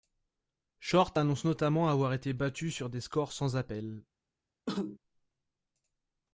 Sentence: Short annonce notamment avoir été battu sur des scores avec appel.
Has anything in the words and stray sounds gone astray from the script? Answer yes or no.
yes